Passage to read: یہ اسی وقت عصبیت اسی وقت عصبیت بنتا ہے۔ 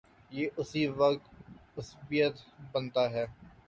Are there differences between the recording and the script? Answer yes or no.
yes